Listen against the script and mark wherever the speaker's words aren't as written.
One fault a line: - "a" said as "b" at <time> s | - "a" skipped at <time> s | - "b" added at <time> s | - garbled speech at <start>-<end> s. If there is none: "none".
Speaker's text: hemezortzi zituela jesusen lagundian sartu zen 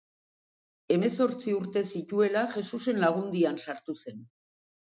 - "urte" added at 1.6 s